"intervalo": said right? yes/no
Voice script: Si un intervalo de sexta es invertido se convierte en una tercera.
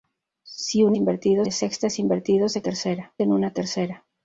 no